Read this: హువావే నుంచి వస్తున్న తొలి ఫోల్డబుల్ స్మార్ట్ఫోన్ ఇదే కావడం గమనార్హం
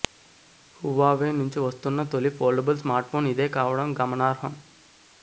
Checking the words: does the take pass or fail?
pass